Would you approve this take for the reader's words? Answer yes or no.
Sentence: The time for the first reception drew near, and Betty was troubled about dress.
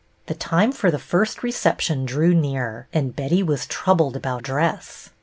yes